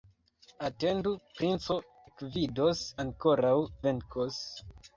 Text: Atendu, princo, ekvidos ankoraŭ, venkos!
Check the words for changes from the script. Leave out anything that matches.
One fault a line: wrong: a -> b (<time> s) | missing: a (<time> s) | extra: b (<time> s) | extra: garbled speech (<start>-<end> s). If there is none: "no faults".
no faults